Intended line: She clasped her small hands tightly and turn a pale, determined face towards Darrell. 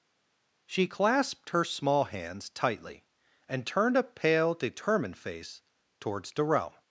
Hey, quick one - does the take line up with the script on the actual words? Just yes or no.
no